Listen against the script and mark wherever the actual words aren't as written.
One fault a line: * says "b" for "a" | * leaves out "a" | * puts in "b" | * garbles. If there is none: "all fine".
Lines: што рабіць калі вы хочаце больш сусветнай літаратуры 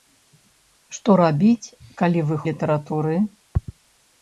* leaves out "хочаце больш сусветнай"